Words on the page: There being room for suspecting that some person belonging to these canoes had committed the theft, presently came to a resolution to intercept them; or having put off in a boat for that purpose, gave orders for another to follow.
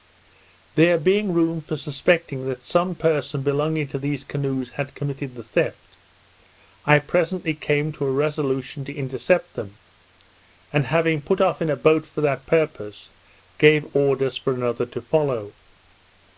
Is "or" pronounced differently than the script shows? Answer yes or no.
yes